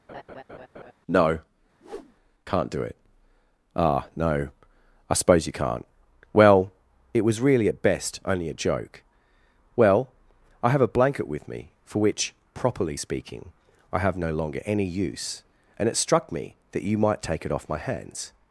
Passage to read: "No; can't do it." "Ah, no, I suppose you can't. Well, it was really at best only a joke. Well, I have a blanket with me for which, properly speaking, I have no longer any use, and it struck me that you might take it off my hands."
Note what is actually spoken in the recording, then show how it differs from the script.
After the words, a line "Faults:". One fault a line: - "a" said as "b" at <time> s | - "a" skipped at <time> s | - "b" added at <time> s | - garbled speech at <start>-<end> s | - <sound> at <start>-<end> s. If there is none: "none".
"No; can't do it." "Ah, no, I suppose you can't. Well, it was really at best only a joke. Well, I have a blanket with me for which, properly speaking, I have no longer any use, and it struck me that you might take it off my hands."
Faults:
- laugh at 0.1-0.9 s
- whoosh at 1.8-2.2 s